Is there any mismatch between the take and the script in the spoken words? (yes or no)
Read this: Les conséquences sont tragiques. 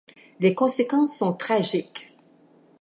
no